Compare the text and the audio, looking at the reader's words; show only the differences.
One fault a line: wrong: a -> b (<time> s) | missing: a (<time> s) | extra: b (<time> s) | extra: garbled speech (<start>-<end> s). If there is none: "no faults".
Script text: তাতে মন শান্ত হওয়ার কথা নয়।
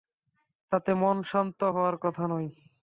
no faults